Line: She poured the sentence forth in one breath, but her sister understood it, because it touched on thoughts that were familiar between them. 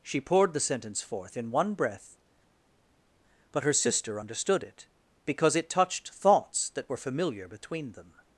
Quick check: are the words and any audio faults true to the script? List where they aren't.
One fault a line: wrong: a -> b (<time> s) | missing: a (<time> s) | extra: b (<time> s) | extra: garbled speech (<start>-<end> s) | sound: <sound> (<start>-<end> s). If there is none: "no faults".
missing: on (6.1 s)